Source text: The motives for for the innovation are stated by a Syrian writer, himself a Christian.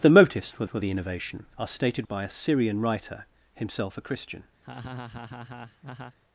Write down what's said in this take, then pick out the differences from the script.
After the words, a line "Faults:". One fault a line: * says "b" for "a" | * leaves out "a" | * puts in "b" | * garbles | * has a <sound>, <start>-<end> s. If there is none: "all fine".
The motives for for the innovation are stated by a Syrian writer, himself a Christian.
Faults:
* has a laugh, 4.6-6.2 s